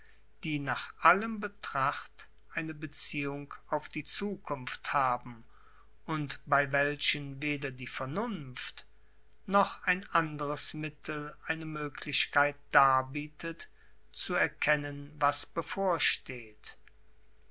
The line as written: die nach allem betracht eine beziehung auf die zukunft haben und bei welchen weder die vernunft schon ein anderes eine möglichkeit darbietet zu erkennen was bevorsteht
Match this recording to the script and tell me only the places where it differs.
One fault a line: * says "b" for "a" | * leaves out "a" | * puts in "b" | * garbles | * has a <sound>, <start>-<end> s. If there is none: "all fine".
* says "noch" for "schon"
* puts in "mittel"